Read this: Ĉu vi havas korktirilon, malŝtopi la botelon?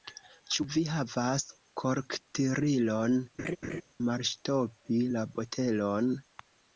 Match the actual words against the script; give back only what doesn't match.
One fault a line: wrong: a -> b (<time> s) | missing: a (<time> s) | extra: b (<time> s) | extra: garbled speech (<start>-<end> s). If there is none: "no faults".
no faults